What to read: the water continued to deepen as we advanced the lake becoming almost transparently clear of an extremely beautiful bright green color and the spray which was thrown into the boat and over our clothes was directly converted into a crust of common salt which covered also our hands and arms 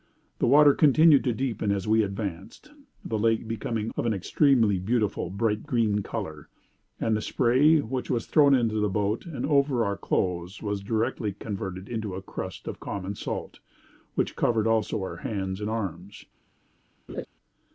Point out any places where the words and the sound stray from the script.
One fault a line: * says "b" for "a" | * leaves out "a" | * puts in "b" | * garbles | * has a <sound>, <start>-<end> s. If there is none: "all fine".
* leaves out "almost transparently clear"
* has a laugh, 17.1-17.3 s